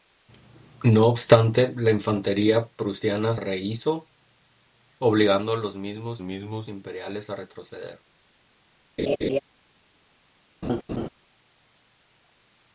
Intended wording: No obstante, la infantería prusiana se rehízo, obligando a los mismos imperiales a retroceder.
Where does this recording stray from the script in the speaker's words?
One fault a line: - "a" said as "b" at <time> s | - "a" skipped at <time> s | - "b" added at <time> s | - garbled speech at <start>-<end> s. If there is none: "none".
- "se" skipped at 3.4 s
- "mismos" added at 6.2 s